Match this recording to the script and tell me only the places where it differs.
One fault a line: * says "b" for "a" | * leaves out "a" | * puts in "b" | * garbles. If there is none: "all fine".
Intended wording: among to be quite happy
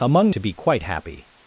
all fine